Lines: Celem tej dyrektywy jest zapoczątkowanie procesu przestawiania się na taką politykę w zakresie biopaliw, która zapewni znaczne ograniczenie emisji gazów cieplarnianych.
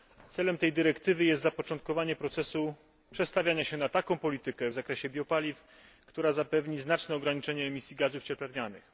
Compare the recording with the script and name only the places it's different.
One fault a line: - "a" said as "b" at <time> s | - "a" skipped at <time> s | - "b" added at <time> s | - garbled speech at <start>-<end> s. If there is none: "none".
none